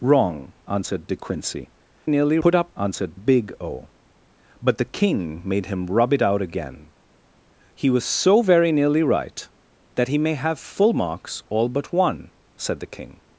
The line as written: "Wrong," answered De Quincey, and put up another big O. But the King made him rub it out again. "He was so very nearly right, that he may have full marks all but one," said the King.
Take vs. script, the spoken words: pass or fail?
fail